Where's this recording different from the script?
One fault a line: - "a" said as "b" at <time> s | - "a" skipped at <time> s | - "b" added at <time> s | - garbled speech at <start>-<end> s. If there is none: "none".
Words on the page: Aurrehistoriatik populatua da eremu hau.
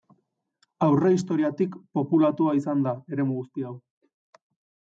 - "izan" added at 2.6 s
- "guzti" added at 3.4 s